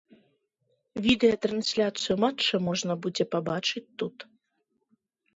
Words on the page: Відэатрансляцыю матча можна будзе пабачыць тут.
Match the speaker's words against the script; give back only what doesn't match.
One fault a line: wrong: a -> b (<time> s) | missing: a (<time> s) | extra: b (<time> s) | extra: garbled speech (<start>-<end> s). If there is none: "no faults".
no faults